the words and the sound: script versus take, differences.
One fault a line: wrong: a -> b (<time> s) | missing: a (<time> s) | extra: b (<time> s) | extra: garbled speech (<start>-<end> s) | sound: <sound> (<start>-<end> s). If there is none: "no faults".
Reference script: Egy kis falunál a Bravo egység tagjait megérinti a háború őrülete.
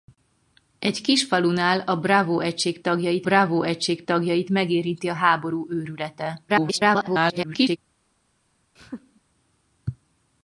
extra: Bravo egység tagjait (3.2 s)
extra: garbled speech (6.5-7.8 s)
sound: laugh (8.8-9.2 s)